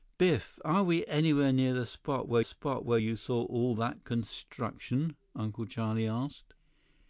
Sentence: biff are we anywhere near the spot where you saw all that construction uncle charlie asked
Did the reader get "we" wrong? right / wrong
right